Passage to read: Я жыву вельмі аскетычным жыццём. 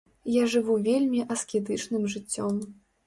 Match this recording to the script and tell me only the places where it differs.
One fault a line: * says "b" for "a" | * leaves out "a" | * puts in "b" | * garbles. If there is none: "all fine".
all fine